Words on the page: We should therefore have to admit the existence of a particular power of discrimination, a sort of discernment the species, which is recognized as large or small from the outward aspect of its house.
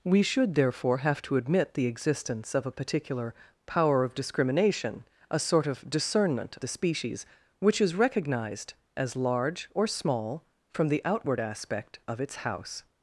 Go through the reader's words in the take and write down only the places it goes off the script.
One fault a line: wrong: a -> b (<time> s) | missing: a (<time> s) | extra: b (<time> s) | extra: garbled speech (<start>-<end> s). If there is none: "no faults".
no faults